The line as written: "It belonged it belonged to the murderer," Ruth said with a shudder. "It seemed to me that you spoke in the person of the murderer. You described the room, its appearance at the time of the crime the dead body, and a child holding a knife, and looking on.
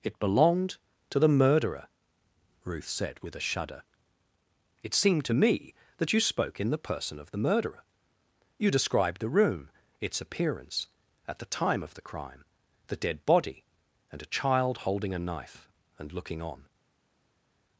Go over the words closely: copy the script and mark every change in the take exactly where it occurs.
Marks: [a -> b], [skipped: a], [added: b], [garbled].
"It belonged [skipped: it belonged] to the murderer," Ruth said with a shudder. "It seemed to me that you spoke in the person of the murderer. You described the room, its appearance at the time of the crime the dead body, and a child holding a knife, and looking on.